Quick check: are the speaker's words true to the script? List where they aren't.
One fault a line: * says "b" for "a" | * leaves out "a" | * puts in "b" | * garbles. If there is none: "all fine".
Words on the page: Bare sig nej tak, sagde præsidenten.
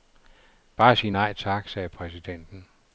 all fine